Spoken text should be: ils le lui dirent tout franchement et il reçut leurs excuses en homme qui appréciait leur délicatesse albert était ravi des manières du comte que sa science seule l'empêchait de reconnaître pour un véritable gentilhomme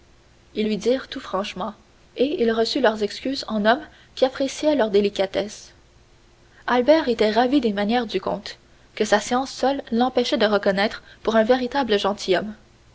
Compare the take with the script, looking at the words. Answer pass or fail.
fail